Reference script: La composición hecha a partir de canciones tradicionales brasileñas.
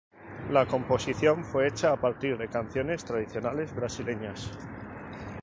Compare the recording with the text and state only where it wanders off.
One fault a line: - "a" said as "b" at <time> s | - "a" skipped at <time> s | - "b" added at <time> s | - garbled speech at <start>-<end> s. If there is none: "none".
- "fue" added at 1.4 s